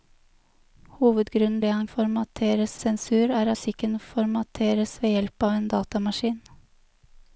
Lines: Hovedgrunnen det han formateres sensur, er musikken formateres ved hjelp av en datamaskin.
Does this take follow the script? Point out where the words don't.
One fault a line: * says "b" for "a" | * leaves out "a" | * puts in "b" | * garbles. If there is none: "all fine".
all fine